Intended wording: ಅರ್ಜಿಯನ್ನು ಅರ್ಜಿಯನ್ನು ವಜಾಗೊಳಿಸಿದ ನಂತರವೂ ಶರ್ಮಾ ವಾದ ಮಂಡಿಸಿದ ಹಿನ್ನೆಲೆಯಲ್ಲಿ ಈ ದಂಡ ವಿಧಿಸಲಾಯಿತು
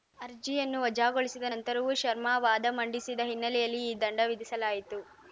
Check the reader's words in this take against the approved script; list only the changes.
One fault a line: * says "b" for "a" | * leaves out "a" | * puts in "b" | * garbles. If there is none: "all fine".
* leaves out "ಅರ್ಜಿಯನ್ನು"